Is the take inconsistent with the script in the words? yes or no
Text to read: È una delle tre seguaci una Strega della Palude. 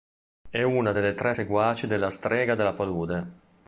yes